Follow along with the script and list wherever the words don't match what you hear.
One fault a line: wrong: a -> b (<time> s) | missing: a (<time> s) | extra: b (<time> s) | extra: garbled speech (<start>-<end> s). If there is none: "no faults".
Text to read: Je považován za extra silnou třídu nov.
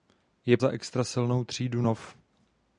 missing: považován (0.6 s)